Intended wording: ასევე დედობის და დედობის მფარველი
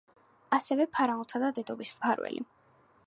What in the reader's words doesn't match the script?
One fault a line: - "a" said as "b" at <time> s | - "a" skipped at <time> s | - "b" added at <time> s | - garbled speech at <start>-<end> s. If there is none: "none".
- "დედობის" said as "ფარაონთა" at 0.9 s